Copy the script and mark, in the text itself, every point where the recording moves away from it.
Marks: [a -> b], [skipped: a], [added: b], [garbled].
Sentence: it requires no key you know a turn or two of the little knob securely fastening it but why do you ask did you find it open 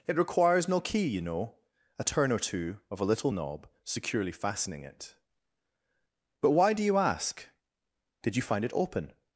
it requires no key you know a turn or two of [the -> a] little knob securely fastening it but why do you ask did you find it open